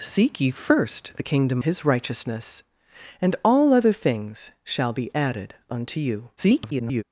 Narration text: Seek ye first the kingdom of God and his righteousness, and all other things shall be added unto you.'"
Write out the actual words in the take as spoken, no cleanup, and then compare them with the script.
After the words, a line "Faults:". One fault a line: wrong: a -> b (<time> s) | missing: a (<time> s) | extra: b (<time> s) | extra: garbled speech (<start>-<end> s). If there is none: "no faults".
Seek ye first the kingdom his righteousness, and all other things shall be added unto you.'" [garbled]
Faults:
missing: of God and (1.6 s)
extra: garbled speech (6.4-7.0 s)